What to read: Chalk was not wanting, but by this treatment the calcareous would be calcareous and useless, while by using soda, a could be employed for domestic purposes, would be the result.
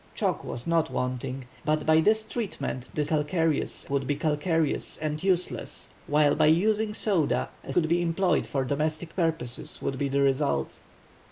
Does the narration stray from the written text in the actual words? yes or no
no